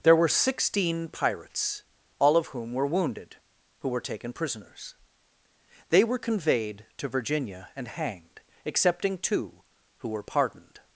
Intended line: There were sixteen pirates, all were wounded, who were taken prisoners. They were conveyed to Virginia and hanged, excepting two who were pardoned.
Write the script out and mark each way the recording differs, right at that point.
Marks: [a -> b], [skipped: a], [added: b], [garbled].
There were sixteen pirates, all [added: of whom] were wounded, who were taken prisoners. They were conveyed to Virginia and hanged, excepting two who were pardoned.